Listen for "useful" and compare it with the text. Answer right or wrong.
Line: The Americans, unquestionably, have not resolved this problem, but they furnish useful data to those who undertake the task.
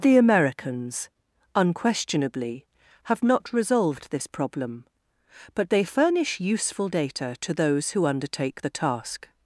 right